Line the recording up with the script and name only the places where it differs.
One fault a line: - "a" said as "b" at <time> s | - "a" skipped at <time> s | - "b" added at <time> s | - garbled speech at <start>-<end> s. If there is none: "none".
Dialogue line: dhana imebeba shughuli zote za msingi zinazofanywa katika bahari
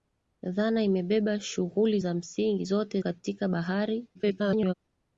- "zote" skipped at 2.0 s
- "zinazofanywa" said as "zote" at 2.6 s
- garbled speech at 4.1-4.7 s